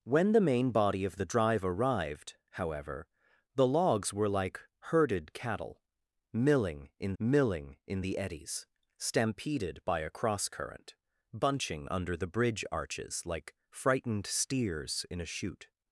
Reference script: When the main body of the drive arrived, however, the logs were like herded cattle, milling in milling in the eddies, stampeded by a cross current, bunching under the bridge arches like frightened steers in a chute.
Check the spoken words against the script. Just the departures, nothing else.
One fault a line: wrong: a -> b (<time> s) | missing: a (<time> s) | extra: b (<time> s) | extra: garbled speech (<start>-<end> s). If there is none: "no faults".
no faults